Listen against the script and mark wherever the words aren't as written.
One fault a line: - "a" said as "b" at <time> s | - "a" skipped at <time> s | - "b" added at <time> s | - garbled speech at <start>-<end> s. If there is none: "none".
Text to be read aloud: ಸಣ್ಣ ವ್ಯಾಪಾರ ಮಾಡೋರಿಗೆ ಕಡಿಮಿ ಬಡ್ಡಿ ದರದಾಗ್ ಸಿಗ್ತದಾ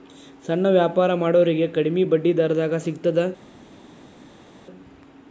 none